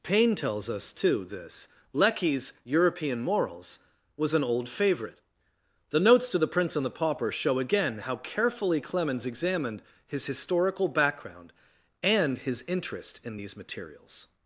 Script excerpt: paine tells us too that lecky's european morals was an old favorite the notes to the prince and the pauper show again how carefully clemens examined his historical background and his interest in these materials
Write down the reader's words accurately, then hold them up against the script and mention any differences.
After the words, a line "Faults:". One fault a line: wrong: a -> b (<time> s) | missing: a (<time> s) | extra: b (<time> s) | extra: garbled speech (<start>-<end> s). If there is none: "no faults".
paine tells us too this lecky's european morals was an old favorite the notes to the prince and the pauper show again how carefully clemens examined his historical background and his interest in these materials
Faults:
wrong: that -> this (1.2 s)